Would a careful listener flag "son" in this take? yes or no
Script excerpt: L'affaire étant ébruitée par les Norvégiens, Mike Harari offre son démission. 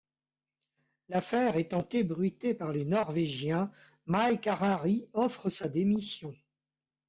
yes